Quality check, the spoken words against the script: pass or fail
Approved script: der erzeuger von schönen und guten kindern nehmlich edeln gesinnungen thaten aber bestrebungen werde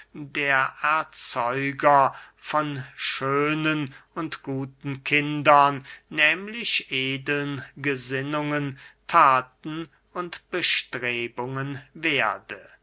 fail